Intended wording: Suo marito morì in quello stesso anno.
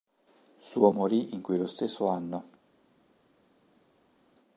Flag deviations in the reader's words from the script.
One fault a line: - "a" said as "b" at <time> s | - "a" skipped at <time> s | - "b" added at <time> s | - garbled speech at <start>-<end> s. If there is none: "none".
- "marito" skipped at 0.9 s